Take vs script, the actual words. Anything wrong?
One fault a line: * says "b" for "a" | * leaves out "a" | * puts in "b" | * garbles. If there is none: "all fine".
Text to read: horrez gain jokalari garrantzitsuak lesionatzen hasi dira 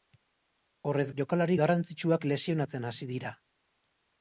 * leaves out "gain"